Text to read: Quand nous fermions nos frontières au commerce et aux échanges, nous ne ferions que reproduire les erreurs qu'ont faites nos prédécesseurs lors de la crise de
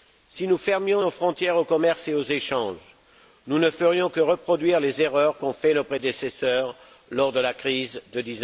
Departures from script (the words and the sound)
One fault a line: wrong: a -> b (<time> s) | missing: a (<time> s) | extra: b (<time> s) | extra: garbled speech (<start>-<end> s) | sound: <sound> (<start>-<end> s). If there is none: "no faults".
wrong: Quand -> Si (0.3 s)